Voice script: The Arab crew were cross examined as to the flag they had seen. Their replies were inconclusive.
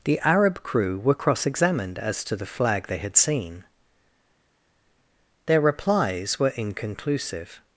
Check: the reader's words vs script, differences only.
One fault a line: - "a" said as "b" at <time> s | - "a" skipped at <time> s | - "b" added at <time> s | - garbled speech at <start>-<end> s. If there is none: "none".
none